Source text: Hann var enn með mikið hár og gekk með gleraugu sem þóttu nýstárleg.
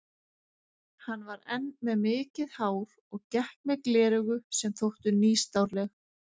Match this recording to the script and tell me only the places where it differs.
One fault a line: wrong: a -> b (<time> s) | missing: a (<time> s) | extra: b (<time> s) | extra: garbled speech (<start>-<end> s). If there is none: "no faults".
no faults